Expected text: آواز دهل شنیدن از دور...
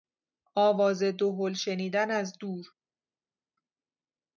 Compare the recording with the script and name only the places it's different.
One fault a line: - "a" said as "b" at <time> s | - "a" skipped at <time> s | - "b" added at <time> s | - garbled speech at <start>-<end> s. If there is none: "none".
none